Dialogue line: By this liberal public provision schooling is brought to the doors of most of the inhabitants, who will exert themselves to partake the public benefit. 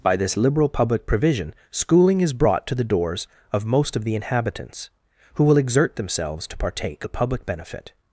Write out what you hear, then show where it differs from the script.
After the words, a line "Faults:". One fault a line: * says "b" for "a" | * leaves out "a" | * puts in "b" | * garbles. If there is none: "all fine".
By this liberal public provision schooling is brought to the doors of most of the inhabitants, who will exert themselves to partake the public benefit.
Faults:
all fine